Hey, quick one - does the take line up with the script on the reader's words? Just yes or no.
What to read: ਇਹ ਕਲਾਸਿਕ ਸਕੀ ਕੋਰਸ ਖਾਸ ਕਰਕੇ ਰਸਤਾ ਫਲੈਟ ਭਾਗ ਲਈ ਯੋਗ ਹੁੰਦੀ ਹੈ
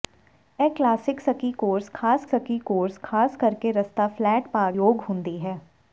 no